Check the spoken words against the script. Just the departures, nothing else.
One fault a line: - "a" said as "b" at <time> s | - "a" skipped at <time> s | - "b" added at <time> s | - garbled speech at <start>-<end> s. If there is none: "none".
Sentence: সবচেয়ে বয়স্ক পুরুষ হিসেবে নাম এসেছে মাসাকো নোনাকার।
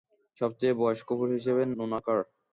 - "নাম এসেছে মাসাকো" skipped at 1.6 s